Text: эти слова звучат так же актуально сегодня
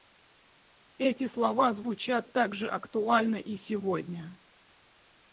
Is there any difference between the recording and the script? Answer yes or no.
yes